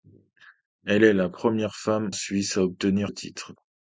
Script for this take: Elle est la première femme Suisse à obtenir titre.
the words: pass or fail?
pass